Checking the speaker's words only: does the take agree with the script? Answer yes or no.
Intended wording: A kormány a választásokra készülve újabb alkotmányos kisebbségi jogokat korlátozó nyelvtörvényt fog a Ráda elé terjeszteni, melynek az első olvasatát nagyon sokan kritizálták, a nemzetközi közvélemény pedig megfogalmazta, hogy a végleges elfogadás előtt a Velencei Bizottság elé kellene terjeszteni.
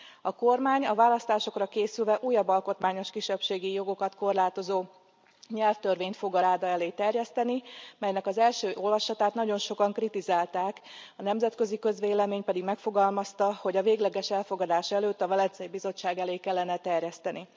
yes